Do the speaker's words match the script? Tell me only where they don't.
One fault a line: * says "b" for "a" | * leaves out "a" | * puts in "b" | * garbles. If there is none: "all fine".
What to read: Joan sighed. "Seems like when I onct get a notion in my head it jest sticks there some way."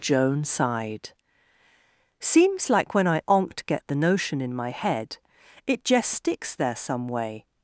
* says "the" for "a"